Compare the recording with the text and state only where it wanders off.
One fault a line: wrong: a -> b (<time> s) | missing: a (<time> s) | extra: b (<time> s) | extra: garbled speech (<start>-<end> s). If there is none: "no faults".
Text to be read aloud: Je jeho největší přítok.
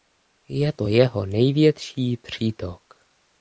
extra: to (0.7 s)